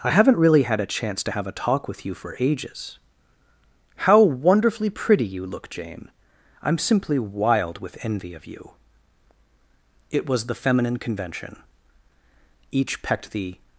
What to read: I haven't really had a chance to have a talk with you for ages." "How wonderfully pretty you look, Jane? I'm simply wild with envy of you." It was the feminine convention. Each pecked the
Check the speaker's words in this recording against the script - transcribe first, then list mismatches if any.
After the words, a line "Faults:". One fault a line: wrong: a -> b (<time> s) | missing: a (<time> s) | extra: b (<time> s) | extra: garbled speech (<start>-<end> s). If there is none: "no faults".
I haven't really had a chance to have a talk with you for ages." "How wonderfully pretty you look, Jane? I'm simply wild with envy of you." It was the feminine convention. Each pecked the
Faults:
no faults